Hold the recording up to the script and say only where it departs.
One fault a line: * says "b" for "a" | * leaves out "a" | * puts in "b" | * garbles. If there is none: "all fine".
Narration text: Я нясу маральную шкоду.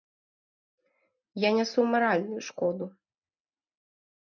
all fine